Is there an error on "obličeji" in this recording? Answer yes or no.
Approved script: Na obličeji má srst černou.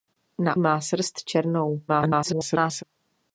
yes